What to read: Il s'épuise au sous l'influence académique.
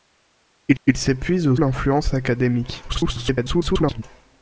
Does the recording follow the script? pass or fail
fail